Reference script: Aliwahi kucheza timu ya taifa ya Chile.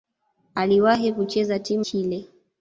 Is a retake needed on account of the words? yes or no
yes